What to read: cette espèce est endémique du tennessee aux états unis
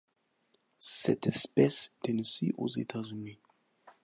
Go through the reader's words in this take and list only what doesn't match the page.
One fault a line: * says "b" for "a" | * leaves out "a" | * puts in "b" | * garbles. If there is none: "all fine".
* leaves out "est endémique du"